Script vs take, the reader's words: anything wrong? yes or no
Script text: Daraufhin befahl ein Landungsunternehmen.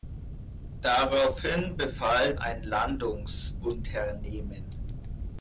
no